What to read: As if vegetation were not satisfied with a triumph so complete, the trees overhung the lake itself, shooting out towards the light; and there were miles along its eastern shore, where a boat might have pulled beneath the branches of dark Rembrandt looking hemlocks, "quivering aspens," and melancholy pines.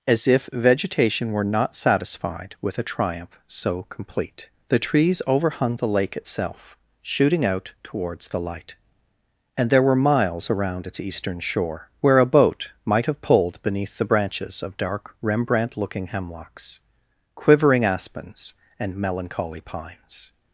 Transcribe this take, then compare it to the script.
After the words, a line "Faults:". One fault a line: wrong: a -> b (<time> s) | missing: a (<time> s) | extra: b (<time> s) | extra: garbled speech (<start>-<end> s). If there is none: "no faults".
As if vegetation were not satisfied with a triumph so complete, the trees overhung the lake itself, shooting out towards the light; and there were miles around its eastern shore, where a boat might have pulled beneath the branches of dark Rembrandt looking hemlocks, "quivering aspens," and melancholy pines.
Faults:
wrong: along -> around (10.5 s)